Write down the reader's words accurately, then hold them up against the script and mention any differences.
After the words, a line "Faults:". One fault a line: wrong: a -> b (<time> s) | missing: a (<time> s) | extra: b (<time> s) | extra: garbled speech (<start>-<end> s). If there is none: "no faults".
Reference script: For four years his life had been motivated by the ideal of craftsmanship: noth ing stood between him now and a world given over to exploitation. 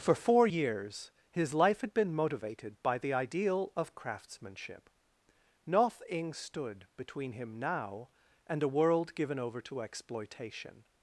For four years his life had been motivated by the ideal of craftsmanship: noth ing stood between him now and a world given over to exploitation.
Faults:
no faults